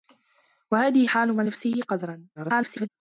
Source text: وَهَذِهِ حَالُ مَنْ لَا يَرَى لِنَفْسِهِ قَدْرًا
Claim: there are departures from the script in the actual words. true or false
true